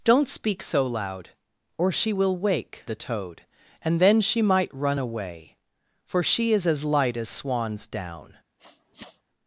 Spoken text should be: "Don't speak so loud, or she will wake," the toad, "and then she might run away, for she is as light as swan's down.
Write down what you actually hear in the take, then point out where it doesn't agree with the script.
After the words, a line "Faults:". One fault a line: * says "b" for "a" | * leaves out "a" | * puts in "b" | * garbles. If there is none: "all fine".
"Don't speak so loud, or she will wake," the toad, "and then she might run away, for she is as light as swan's down.
Faults:
all fine